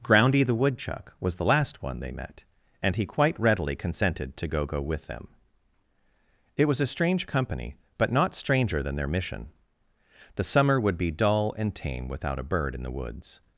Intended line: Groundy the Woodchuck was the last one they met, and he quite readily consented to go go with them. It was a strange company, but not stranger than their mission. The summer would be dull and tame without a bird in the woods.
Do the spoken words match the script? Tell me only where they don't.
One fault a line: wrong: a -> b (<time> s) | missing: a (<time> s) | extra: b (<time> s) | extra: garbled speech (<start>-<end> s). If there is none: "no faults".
no faults